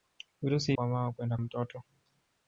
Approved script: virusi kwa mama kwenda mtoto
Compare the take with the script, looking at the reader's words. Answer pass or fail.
pass